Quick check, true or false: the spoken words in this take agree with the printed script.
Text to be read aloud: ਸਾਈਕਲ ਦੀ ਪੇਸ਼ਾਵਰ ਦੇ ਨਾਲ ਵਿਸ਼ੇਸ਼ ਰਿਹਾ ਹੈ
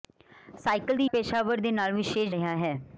true